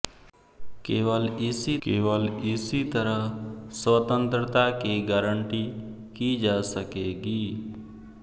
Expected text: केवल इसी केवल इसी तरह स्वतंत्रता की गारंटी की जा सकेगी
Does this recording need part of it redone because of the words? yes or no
no